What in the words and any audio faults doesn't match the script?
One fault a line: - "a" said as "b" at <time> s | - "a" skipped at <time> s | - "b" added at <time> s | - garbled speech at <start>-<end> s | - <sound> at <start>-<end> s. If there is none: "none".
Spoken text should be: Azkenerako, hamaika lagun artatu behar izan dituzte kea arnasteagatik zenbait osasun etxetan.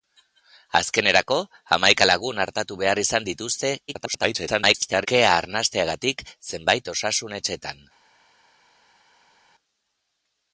- garbled speech at 3.9-5.1 s